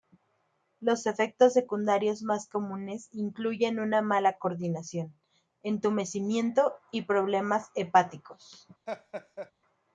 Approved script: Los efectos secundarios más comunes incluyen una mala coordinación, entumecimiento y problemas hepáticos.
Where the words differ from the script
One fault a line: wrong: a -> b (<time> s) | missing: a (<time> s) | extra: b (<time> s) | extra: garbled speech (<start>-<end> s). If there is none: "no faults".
no faults